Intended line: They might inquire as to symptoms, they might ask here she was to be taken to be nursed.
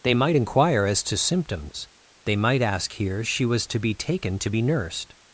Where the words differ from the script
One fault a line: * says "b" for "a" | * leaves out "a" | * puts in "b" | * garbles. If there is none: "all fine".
all fine